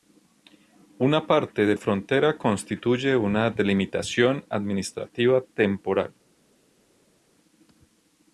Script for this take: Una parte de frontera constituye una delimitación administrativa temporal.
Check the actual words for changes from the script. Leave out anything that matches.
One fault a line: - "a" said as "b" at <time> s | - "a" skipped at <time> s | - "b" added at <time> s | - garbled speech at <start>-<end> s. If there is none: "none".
none